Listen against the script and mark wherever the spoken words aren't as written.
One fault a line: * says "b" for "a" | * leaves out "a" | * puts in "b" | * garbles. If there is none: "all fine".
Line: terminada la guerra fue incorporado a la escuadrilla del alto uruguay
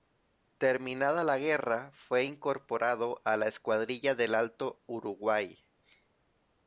all fine